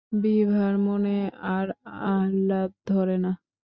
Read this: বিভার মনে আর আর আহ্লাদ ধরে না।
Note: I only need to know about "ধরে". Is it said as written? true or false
true